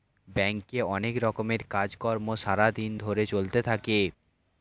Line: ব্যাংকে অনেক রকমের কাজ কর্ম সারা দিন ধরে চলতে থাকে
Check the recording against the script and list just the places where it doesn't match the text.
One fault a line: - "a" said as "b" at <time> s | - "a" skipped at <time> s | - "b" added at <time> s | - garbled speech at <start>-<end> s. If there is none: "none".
none